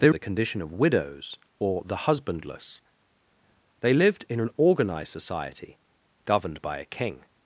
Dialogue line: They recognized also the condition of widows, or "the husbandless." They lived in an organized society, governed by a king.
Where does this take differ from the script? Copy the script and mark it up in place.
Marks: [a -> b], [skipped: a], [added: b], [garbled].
They [skipped: recognized also] the condition of widows, or "the husbandless." They lived in an organized society, governed by a king.